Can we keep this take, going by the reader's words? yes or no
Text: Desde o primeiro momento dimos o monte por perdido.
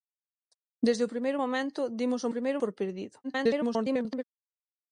no